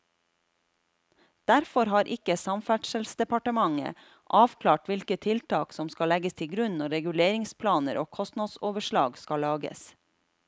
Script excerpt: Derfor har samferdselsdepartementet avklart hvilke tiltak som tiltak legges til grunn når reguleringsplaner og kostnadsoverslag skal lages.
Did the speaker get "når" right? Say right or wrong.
right